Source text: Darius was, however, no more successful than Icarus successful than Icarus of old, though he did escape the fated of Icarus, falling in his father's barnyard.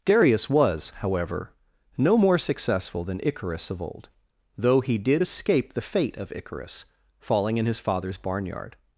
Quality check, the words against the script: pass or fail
fail